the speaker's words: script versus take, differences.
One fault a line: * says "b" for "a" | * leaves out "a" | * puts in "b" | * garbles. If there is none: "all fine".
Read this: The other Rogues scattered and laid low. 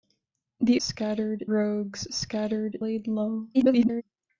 * says "scattered" for "other"
* leaves out "and"
* garbles